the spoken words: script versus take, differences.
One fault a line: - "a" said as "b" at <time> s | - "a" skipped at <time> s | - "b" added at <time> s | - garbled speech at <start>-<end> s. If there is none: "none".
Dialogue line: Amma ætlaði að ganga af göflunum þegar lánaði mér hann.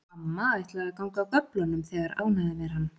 none